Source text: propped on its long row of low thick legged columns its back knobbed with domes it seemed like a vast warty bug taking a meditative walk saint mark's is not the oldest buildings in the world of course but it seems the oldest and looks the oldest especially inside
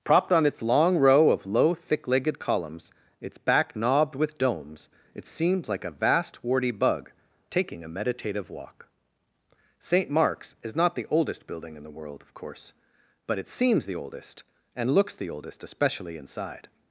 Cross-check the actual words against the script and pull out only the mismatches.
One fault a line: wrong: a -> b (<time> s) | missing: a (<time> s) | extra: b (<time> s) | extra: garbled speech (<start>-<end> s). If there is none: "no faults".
wrong: buildings -> building (11.4 s)